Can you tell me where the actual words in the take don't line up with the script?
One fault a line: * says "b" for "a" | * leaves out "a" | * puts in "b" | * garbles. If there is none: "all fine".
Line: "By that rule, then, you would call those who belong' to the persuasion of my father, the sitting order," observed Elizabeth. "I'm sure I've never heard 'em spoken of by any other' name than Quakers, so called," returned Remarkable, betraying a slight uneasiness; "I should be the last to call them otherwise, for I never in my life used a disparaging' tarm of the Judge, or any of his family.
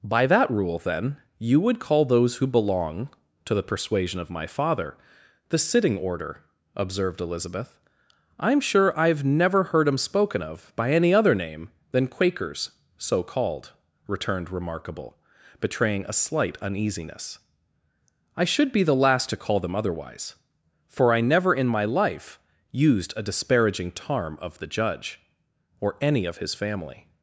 all fine